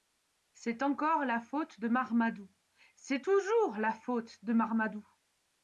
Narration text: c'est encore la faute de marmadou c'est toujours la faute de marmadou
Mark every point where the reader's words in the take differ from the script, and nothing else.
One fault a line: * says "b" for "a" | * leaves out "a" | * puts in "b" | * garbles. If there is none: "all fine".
all fine